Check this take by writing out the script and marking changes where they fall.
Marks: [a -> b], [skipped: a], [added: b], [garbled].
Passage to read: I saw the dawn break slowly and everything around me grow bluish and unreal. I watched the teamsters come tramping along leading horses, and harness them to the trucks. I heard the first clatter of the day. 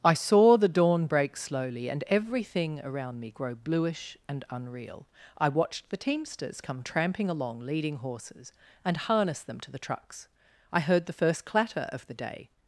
I saw the dawn break slowly and everything around me grow bluish and unreal. I watched the teamsters come tramping along leading horses, and harness them to the trucks. I heard the first clatter of the day.